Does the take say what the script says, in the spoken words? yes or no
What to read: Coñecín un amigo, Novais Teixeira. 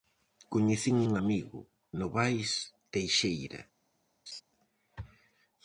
yes